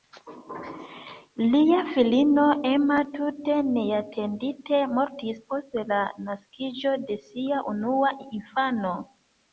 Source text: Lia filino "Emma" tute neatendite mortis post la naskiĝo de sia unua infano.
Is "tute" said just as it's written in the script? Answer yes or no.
yes